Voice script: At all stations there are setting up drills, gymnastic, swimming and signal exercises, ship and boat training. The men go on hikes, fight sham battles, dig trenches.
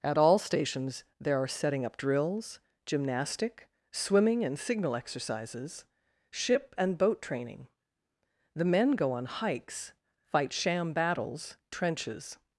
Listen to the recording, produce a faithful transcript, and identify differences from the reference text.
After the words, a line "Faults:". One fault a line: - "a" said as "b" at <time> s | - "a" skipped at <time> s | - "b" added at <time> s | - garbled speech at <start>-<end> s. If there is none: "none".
At all stations there are setting up drills, gymnastic, swimming and signal exercises, ship and boat training. The men go on hikes, fight sham battles, trenches.
Faults:
- "dig" skipped at 11.6 s